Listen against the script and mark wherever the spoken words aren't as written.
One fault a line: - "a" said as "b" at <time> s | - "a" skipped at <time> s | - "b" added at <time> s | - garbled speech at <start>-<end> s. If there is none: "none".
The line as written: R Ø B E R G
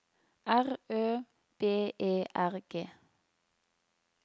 none